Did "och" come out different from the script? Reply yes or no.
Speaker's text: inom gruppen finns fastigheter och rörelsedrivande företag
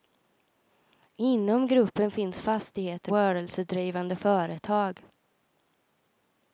yes